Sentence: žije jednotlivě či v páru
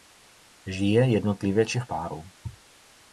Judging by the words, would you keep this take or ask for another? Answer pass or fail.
pass